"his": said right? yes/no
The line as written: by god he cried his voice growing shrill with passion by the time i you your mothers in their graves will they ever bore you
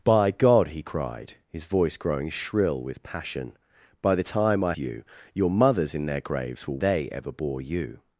yes